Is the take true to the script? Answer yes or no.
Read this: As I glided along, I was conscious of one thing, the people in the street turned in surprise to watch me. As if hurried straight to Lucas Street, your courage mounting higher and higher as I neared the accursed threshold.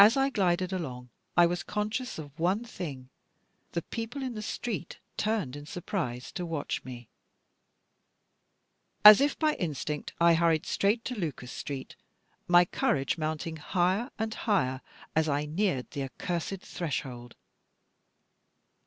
no